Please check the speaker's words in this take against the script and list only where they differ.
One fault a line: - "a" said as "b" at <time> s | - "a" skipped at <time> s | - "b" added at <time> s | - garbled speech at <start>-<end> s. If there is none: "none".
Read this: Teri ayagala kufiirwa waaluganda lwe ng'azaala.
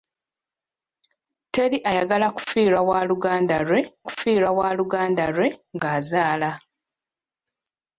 - "kufiirwa waaluganda lwe" added at 4.1 s